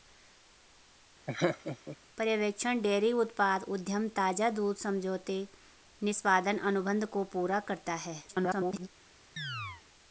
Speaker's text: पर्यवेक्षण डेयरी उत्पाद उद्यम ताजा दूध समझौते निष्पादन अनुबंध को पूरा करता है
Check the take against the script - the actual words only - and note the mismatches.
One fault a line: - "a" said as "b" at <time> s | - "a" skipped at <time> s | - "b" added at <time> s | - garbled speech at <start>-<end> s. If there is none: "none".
- garbled speech at 8.3-8.9 s